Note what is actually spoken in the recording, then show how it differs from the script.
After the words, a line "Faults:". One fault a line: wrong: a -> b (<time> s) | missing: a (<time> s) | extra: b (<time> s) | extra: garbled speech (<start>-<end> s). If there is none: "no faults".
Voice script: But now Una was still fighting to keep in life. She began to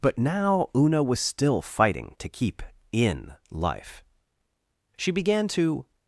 But now Una was still fighting to keep in life. She began to
Faults:
no faults